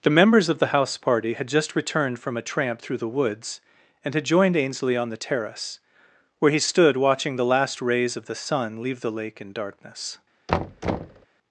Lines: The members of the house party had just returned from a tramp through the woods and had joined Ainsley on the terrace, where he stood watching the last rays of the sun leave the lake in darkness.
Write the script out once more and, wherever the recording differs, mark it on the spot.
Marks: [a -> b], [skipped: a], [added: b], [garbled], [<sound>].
The members of the house party had just returned from a tramp through the woods and had joined Ainsley on the terrace, where he stood watching the last rays of the sun leave the lake in darkness. [thud]